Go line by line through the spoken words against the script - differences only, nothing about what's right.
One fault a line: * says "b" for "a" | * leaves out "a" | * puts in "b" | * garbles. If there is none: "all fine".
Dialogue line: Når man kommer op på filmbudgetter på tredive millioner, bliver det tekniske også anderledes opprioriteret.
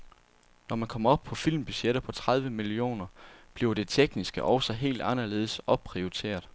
* puts in "helt"